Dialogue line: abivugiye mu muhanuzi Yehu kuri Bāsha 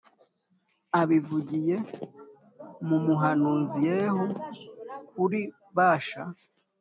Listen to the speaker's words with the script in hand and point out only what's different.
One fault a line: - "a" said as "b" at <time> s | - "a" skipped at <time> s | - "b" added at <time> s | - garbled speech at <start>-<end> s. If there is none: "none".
none